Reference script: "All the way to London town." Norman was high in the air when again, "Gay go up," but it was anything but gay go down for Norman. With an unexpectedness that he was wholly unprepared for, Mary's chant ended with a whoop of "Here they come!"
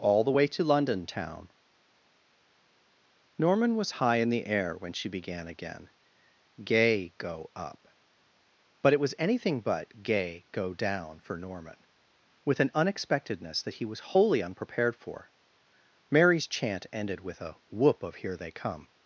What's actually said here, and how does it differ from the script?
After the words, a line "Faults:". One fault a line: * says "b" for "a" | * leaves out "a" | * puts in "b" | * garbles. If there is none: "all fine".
"All the way to London town." Norman was high in the air when she began again, "Gay go up," but it was anything but gay go down for Norman. With an unexpectedness that he was wholly unprepared for, Mary's chant ended with a whoop of "Here they come!"
Faults:
* puts in "she began"